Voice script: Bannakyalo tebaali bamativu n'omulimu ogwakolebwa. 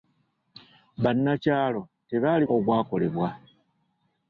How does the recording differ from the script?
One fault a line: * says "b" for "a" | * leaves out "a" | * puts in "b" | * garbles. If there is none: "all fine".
* leaves out "bamativu n'omulimu"